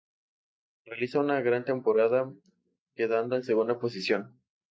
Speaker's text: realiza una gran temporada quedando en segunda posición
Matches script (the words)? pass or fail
pass